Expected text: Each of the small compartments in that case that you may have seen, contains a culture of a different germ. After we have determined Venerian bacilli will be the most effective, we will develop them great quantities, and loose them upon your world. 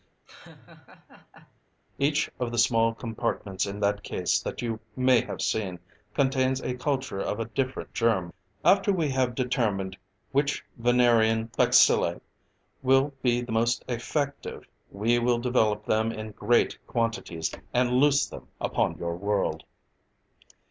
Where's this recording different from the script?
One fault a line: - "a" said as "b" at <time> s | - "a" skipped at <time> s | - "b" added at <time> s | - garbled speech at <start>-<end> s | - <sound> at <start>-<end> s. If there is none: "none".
- laugh at 0.3-1.6 s
- "which" added at 10.3 s
- "in" added at 16.1 s